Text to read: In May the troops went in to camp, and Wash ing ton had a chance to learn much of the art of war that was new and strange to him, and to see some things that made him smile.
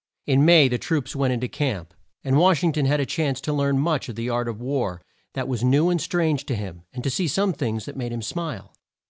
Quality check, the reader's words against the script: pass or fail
pass